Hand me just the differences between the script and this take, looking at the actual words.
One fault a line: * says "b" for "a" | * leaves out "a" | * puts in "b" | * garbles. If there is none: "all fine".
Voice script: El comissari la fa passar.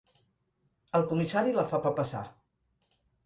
* puts in "fa"